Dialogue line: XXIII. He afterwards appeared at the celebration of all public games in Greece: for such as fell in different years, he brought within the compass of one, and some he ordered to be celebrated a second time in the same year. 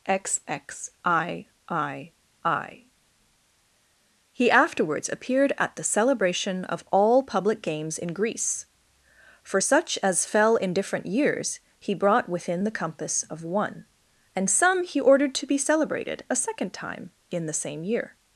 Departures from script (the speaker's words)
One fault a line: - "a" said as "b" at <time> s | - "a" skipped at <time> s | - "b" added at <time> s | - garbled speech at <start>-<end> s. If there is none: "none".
none